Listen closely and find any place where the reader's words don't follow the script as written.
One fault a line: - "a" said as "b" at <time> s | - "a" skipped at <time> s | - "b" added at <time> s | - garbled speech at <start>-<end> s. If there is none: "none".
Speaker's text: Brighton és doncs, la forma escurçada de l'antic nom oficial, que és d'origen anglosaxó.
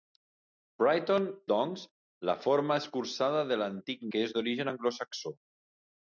- "és" skipped at 1.3 s
- "nom oficial" skipped at 4.1 s